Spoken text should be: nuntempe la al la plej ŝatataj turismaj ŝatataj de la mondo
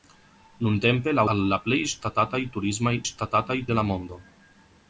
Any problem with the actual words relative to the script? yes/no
no